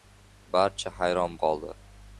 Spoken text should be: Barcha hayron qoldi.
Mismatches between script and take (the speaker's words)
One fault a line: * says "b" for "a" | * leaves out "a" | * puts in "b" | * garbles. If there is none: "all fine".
all fine